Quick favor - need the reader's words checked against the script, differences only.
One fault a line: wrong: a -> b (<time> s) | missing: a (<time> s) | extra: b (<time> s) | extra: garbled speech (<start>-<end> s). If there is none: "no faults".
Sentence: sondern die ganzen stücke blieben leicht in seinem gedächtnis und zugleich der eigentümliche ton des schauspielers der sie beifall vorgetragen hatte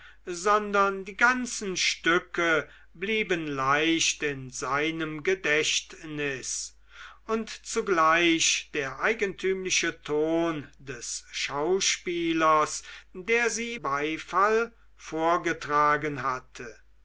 no faults